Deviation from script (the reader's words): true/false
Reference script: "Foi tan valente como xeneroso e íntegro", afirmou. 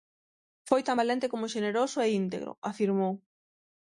false